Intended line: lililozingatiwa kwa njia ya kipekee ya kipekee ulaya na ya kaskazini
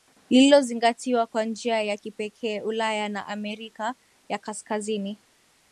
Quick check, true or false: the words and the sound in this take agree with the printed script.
false